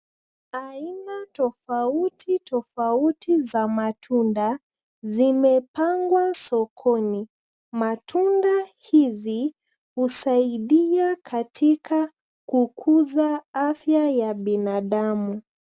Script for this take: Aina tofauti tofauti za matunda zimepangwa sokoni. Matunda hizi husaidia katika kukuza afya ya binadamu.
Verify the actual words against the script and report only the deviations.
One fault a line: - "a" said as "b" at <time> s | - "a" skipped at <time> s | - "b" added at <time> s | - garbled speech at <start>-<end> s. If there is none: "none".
none